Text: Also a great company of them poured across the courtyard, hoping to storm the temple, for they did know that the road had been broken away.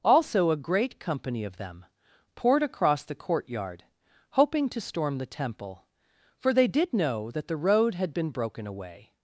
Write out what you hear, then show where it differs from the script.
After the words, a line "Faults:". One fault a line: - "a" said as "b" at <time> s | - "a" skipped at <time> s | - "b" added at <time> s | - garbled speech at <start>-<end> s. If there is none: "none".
Also a great company of them poured across the courtyard, hoping to storm the temple, for they did know that the road had been broken away.
Faults:
none